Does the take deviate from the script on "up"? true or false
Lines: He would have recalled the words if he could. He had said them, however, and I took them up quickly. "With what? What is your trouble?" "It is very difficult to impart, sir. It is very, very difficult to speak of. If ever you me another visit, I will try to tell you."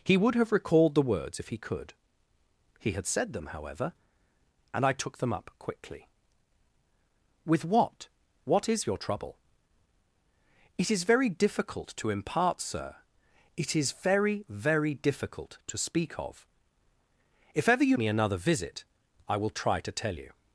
false